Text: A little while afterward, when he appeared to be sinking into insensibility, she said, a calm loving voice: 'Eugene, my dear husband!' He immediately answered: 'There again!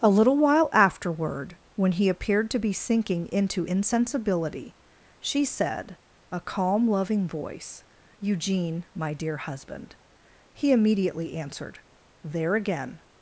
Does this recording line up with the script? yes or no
yes